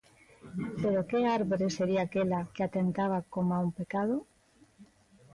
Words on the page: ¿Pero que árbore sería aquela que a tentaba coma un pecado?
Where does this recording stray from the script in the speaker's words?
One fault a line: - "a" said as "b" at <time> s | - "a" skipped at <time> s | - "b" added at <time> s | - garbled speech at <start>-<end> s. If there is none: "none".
none